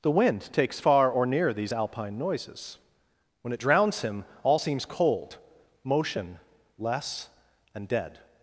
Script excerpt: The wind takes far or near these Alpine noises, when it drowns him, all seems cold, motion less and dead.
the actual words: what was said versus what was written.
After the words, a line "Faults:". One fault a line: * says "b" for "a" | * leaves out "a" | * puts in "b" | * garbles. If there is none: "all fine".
The wind takes far or near these Alpine noises, when it drowns him, all seems cold, motion less and dead.
Faults:
all fine